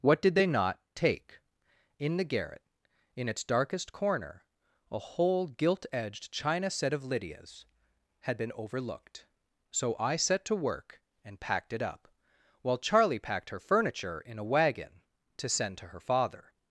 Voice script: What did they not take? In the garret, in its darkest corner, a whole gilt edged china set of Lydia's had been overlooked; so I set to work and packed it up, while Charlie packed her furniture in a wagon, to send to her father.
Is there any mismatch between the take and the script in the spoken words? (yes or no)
no